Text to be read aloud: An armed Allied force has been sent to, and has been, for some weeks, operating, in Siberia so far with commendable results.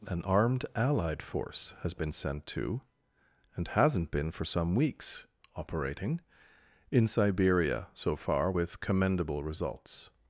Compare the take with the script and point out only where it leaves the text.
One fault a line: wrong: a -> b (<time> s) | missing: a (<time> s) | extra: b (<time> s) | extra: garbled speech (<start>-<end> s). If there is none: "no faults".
wrong: has -> hasn't (3.7 s)